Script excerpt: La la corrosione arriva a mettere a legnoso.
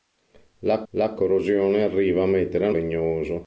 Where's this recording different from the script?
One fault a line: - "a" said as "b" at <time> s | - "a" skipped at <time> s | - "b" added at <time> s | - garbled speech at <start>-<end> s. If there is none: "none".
none